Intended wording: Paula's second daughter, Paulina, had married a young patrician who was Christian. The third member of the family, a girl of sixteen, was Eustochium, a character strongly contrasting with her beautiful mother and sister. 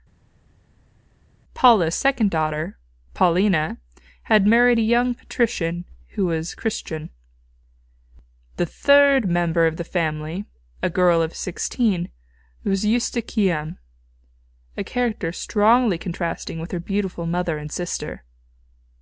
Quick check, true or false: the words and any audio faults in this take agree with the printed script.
true